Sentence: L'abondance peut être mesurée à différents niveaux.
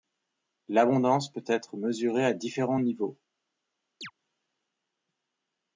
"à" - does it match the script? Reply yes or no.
yes